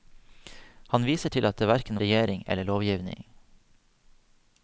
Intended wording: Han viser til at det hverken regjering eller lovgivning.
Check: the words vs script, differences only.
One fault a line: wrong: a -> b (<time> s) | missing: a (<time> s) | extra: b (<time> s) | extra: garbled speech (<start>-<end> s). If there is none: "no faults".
no faults